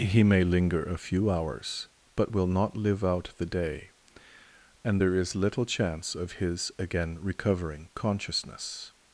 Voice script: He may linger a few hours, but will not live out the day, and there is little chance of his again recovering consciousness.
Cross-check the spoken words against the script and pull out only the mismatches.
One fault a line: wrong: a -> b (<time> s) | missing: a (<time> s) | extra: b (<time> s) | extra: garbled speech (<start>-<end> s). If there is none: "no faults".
no faults